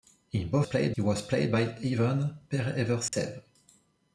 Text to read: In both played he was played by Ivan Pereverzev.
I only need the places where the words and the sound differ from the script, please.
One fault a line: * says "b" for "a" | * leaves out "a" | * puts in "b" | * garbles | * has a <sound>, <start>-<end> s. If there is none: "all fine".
* has a dropout, 3.1-3.1 s